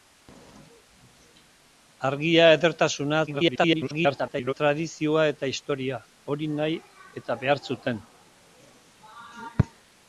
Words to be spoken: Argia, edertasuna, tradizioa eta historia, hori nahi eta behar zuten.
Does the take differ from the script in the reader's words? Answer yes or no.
yes